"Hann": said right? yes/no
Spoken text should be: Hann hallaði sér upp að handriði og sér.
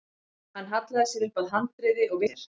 yes